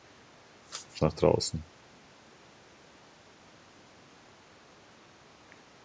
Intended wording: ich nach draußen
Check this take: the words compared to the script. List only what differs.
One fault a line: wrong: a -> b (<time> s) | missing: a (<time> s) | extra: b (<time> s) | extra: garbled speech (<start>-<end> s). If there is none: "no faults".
no faults